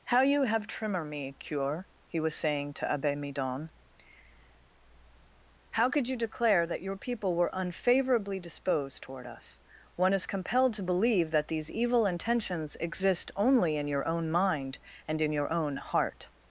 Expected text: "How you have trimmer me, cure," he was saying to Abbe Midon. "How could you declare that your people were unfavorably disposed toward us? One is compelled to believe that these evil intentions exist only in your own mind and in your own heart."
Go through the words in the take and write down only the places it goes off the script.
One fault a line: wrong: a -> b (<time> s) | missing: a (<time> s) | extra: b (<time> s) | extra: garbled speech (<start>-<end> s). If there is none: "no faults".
no faults